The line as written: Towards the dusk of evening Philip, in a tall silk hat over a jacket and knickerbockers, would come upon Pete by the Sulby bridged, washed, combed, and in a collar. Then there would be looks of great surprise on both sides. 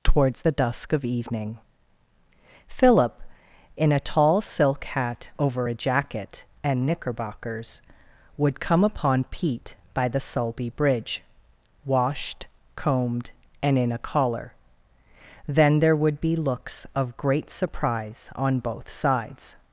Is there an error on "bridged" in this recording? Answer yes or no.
yes